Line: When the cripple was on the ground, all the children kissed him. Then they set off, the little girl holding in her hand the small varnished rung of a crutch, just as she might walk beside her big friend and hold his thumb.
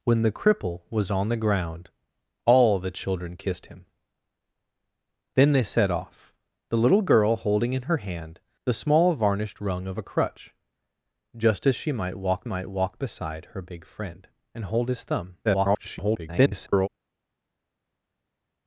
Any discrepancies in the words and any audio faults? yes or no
yes